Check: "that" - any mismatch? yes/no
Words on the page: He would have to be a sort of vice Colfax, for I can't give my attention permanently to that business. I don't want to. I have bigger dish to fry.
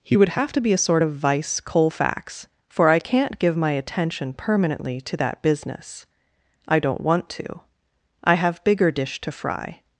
no